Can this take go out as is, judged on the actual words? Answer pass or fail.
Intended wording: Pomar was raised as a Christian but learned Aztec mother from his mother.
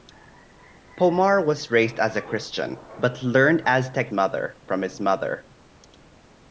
pass